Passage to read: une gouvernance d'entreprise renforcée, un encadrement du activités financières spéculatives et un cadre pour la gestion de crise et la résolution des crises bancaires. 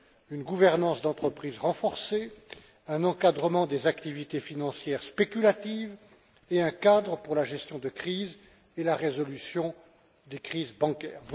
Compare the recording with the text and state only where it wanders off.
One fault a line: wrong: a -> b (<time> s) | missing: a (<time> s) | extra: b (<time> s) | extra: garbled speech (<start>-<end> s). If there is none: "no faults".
wrong: du -> des (3.7 s)